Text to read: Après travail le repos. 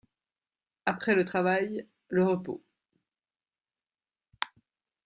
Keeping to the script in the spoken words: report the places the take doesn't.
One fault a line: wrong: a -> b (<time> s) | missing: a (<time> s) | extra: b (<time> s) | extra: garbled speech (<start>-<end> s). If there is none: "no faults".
extra: le (1.1 s)